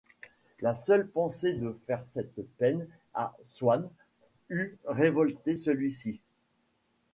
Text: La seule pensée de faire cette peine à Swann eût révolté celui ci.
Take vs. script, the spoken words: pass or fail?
pass